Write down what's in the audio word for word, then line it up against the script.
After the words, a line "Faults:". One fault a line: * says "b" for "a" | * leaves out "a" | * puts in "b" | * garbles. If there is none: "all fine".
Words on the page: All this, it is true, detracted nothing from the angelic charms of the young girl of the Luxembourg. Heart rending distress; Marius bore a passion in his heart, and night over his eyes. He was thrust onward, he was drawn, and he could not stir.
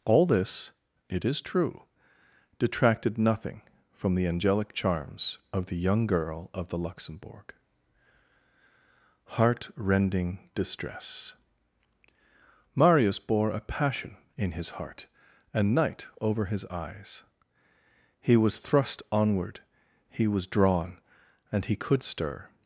All this, it is true, detracted nothing from the angelic charms of the young girl of the Luxembourg. Heart rending distress; Marius bore a passion in his heart, and night over his eyes. He was thrust onward, he was drawn, and he could stir.
Faults:
* leaves out "not"